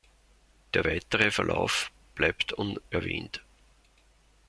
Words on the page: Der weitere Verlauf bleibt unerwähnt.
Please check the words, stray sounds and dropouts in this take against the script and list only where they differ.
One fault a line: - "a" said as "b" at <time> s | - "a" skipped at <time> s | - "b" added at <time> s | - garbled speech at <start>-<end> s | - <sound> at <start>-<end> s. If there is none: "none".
none